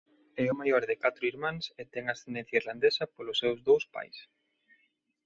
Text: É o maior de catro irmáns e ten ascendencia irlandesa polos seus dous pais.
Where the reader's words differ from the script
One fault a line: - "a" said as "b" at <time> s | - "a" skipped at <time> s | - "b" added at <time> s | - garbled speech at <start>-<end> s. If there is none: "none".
none